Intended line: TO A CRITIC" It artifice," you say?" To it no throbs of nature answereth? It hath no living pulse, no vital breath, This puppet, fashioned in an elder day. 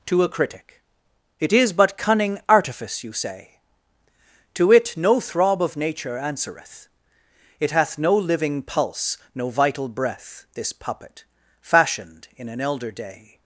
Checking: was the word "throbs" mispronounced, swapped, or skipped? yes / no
yes